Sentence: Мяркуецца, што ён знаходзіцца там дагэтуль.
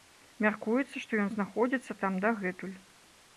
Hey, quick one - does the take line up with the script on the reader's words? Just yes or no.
yes